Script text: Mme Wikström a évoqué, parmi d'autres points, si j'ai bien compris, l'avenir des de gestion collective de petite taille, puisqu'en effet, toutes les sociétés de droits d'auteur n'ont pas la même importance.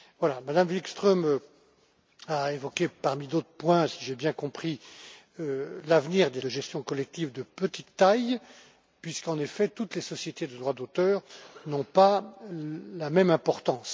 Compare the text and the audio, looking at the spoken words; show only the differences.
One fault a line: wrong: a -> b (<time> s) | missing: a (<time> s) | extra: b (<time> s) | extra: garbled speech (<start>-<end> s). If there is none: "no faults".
no faults